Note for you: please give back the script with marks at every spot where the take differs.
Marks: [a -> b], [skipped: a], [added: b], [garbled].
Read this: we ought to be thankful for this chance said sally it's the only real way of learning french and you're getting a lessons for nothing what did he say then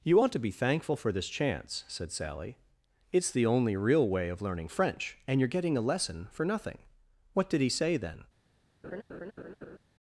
[we -> you] ought to be thankful for this chance said sally it's the only real way of learning french and you're getting a [lessons -> lesson] for nothing what did he say then